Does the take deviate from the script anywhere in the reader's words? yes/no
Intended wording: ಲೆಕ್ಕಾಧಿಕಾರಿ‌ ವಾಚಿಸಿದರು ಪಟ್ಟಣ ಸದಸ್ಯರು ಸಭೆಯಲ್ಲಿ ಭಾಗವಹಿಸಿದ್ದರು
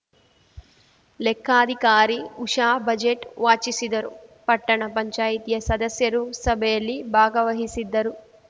yes